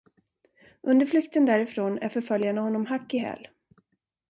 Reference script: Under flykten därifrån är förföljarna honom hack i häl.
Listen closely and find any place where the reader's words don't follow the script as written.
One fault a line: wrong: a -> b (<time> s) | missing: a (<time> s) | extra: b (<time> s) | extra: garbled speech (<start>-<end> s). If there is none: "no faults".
no faults